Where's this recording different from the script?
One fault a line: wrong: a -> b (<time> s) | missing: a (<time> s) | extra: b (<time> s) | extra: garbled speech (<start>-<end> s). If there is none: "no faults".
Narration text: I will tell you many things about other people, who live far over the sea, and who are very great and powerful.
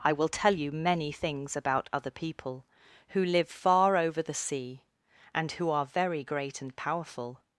no faults